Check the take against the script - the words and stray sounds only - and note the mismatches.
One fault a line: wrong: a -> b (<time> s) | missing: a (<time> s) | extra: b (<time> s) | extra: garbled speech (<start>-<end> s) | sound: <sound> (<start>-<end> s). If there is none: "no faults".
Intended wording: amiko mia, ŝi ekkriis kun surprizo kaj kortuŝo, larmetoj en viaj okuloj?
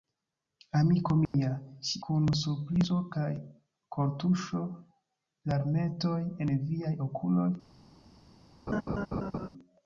sound: dropout (1.2-1.3 s)
missing: ekkriis (2.0 s)
sound: laugh (8.7-9.5 s)